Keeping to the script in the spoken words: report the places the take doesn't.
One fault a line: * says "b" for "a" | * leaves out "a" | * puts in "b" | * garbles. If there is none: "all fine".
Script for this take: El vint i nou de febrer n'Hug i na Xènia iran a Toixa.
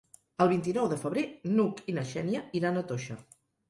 all fine